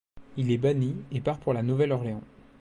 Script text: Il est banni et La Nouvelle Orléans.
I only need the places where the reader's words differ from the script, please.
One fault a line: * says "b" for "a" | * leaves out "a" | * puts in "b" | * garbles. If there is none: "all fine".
* puts in "part pour"